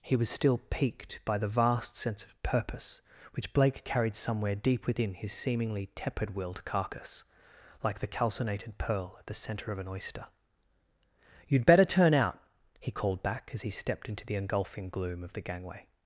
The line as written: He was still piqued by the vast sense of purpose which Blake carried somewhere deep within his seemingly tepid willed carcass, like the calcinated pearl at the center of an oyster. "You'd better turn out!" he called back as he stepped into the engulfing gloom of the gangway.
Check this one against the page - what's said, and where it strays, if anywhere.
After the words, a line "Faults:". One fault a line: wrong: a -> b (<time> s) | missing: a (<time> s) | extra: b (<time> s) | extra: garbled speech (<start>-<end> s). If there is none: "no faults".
He was still piqued by the vast sense of purpose which Blake carried somewhere deep within his seemingly tepid willed carcass, like the calcinated pearl at the center of an oyster. "You'd better turn out!" he called back as he stepped into the engulfing gloom of the gangway.
Faults:
no faults